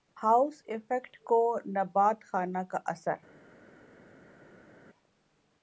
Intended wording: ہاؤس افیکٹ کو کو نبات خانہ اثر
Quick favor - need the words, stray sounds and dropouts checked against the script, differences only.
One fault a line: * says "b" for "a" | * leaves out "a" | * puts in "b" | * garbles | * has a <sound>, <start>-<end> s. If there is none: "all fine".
* leaves out "کو"
* puts in "کا"